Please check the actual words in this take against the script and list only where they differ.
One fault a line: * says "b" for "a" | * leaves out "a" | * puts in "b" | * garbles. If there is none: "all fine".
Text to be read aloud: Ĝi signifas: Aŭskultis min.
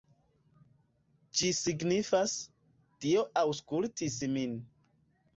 * puts in "Dio"